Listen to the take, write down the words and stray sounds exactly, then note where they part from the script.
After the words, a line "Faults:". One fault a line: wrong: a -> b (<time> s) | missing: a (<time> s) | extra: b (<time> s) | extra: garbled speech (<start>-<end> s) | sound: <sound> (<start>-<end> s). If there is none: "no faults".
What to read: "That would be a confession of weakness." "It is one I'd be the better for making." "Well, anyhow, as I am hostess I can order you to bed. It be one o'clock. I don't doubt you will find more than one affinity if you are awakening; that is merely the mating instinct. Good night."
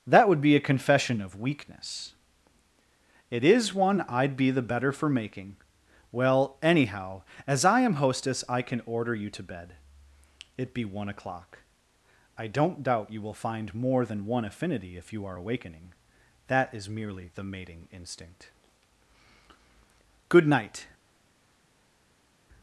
"That would be a confession of weakness." "It is one I'd be the better for making." "Well, anyhow, as I am hostess I can order you to bed. It be one o'clock. I don't doubt you will find more than one affinity if you are awakening; that is merely the mating instinct. Good night."
Faults:
no faults